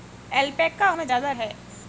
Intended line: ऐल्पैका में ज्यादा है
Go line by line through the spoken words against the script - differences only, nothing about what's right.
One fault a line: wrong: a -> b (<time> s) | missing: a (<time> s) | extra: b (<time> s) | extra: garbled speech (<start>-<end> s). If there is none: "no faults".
no faults